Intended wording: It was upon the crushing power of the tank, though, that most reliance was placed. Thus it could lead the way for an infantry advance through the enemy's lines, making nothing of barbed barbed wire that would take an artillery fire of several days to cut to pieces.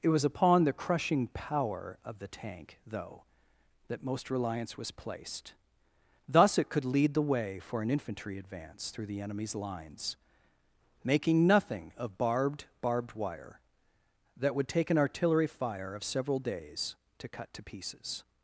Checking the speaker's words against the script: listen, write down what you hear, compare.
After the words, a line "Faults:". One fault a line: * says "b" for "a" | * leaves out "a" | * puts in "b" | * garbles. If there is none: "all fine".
It was upon the crushing power of the tank, though, that most reliance was placed. Thus it could lead the way for an infantry advance through the enemy's lines, making nothing of barbed barbed wire that would take an artillery fire of several days to cut to pieces.
Faults:
all fine